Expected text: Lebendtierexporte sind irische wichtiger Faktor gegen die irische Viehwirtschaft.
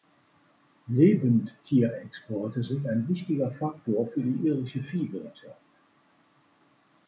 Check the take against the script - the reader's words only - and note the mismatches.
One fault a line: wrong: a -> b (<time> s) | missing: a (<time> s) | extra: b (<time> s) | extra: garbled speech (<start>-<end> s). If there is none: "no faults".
wrong: irische -> ein (2.9 s)
wrong: gegen -> für (4.1 s)